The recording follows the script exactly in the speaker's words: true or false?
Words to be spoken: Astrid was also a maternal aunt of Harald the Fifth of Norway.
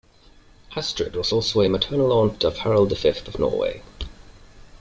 true